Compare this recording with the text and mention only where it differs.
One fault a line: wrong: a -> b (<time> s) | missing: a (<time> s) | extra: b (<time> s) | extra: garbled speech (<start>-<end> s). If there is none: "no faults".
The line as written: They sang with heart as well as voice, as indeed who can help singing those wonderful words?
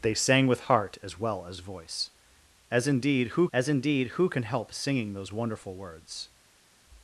extra: as indeed who (3.5 s)